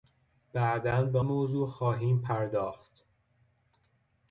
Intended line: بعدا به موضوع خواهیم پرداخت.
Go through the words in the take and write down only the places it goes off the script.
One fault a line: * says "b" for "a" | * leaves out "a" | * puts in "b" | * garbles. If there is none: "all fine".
all fine